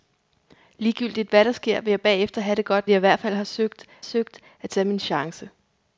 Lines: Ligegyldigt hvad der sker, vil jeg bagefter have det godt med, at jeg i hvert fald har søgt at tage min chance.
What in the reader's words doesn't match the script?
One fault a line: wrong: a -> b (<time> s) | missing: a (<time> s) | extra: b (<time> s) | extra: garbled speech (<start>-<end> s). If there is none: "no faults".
missing: med at (2.9 s)
extra: søgt (4.0 s)